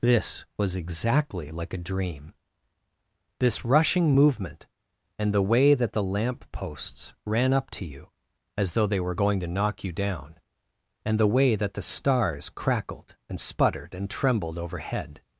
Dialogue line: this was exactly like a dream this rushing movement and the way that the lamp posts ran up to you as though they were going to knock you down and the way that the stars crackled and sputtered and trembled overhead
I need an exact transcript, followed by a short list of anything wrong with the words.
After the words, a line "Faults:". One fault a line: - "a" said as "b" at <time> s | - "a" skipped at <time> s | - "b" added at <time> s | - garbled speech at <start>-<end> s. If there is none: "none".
this was exactly like a dream this rushing movement and the way that the lamp posts ran up to you as though they were going to knock you down and the way that the stars crackled and sputtered and trembled overhead
Faults:
none